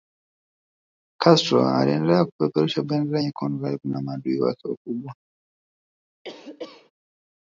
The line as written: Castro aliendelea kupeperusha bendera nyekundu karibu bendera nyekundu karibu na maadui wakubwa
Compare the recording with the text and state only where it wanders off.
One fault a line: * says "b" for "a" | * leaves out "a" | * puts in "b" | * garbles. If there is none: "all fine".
* leaves out "bendera nyekundu karibu"
* puts in "wake"